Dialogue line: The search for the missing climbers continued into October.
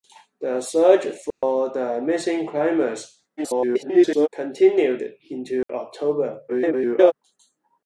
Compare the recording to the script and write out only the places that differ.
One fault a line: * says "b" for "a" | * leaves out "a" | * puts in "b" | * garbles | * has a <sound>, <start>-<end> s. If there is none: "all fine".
* has a dropout, 1.3-1.4 s
* garbles
* has a dropout, 5.6-5.7 s
* garbles